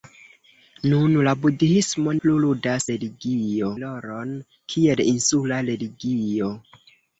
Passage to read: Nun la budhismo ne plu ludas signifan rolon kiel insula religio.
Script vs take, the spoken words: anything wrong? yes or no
yes